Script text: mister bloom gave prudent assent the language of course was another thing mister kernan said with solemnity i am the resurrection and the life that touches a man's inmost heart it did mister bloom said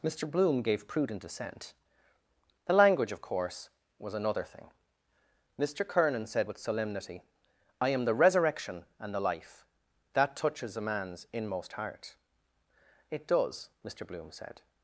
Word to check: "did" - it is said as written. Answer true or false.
false